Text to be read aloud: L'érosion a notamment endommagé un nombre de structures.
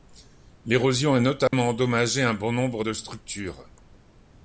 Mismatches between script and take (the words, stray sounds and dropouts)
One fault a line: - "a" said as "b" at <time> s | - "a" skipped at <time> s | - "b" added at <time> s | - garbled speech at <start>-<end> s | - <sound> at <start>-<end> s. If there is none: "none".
- dropout at 1.5-1.5 s
- "bon" added at 2.3 s